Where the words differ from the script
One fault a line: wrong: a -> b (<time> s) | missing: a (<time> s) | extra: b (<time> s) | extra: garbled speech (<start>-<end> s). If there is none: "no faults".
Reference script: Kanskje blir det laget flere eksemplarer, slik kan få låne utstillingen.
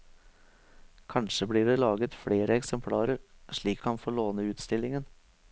no faults